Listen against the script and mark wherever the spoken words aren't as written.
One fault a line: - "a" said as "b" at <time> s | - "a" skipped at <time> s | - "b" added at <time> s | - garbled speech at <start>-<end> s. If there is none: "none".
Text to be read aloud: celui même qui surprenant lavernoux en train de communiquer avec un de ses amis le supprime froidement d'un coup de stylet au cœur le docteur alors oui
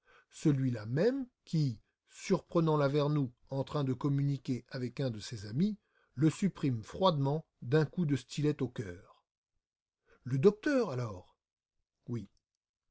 - "là" added at 0.7 s